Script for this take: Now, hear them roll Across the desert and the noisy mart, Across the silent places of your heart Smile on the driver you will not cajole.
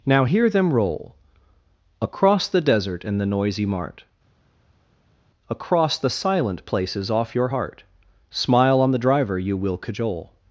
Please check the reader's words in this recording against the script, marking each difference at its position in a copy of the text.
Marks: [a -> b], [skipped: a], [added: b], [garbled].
Now, hear them roll Across the desert and the noisy mart, Across the silent places [of -> off] your heart Smile on the driver you will [skipped: not] cajole.